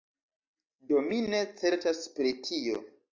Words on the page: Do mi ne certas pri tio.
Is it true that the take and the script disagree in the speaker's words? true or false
false